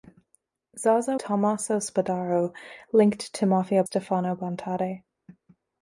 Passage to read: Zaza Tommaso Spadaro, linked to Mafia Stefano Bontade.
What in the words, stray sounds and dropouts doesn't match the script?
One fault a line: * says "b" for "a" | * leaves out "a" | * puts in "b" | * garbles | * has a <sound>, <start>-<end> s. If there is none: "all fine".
all fine